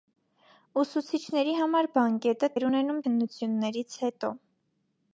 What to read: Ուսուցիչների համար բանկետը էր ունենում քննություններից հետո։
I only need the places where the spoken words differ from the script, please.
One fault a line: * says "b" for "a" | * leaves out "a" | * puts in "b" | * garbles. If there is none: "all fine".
all fine